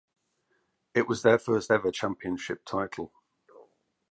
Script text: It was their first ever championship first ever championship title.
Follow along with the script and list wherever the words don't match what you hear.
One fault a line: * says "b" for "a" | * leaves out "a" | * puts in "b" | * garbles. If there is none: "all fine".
* leaves out "first ever championship"